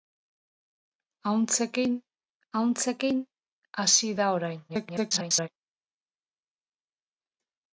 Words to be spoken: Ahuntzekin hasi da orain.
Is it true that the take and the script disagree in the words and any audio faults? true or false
true